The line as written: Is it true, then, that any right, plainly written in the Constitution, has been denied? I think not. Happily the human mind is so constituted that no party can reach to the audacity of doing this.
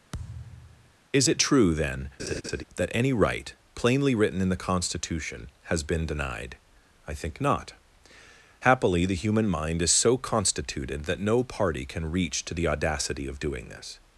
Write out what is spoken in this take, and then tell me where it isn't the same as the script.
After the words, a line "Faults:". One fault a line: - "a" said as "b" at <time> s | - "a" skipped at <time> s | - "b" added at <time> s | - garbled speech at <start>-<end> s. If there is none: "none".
Is it true, then, that any right, plainly written in the Constitution, has been denied? I think not. Happily the human mind is so constituted that no party can reach to the audacity of doing this.
Faults:
none